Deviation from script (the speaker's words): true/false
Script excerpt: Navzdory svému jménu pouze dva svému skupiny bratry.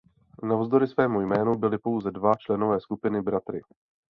true